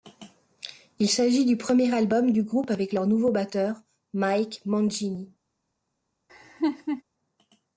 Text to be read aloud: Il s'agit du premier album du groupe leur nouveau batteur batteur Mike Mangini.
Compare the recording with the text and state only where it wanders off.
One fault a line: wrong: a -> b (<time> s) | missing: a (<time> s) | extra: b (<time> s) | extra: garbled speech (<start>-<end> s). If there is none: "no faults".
extra: avec (2.7 s)
missing: batteur (3.8 s)